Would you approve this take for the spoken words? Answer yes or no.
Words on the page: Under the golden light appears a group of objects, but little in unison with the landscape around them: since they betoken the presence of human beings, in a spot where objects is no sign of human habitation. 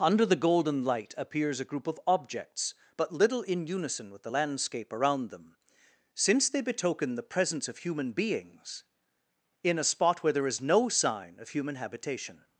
no